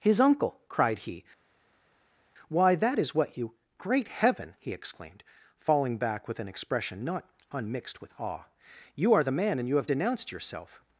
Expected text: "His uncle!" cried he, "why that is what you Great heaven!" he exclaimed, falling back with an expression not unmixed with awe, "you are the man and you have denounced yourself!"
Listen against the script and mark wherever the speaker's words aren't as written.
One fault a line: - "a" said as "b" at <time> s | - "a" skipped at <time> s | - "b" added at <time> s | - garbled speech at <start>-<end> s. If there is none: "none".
none